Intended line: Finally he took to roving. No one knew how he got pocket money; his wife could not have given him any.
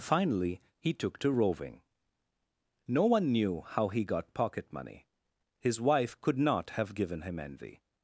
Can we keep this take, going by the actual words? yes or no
no